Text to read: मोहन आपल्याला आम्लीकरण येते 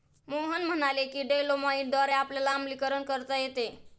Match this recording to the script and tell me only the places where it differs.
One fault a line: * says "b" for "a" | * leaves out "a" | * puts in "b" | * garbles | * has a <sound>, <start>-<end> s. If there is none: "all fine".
* puts in "म्हणाले की डोलोमाईटद्वारे"
* puts in "करता"